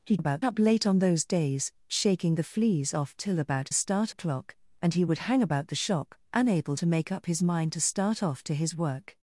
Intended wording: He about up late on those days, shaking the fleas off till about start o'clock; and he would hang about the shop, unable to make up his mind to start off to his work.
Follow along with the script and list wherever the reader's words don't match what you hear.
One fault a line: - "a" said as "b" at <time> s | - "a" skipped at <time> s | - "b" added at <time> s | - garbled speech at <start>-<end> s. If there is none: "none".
none